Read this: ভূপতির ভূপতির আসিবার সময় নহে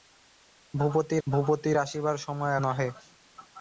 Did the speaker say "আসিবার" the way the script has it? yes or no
yes